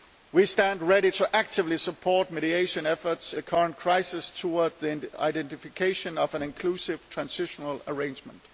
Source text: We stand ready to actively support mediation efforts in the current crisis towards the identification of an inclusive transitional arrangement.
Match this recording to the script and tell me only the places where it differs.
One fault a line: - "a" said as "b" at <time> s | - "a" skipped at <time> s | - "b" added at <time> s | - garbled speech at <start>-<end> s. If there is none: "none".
- "in" skipped at 3.3 s